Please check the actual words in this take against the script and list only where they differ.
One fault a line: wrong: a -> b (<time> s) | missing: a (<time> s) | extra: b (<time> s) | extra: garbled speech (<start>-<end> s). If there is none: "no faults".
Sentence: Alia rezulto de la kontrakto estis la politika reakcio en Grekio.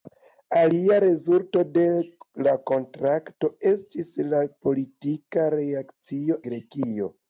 missing: en (6.4 s)